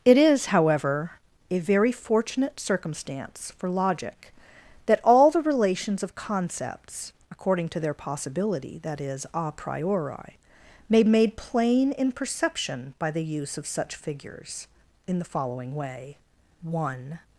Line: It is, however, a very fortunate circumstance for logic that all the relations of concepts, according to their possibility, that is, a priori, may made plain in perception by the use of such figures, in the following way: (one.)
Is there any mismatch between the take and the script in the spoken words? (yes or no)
no